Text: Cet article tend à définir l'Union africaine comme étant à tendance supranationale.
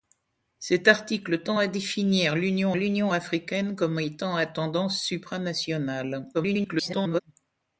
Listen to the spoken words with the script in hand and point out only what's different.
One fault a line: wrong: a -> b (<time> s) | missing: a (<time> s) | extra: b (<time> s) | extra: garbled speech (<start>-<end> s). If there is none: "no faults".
extra: l'Union (2.8 s)
extra: garbled speech (6.3-7.2 s)